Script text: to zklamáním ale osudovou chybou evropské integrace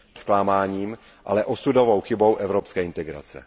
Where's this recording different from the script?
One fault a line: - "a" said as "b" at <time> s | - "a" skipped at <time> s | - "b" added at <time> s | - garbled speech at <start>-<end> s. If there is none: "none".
none